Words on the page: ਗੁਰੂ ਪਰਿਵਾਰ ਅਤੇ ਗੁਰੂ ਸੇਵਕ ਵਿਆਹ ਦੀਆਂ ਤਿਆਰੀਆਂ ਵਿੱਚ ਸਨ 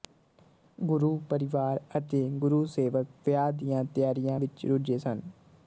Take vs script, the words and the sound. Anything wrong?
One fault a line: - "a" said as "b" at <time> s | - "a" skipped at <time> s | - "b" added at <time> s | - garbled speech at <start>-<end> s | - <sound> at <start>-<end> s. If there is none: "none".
- "ਰੁੱਝੇ" added at 4.7 s